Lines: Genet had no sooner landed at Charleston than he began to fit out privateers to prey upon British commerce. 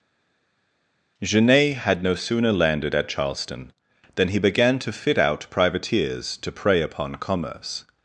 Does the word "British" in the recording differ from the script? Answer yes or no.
yes